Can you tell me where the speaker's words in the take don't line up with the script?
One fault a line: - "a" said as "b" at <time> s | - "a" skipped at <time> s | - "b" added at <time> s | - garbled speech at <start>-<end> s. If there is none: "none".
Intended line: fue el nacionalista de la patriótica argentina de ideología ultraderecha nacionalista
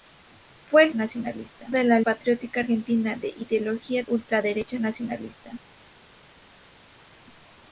none